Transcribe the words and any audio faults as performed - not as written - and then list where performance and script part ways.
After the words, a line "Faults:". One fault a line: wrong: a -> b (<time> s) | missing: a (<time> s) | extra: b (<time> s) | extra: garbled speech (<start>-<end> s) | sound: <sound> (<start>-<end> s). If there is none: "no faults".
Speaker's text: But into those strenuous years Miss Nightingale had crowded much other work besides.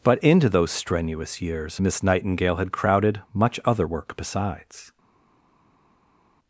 But into those strenuous years Miss Nightingale had crowded much other work besides.
Faults:
no faults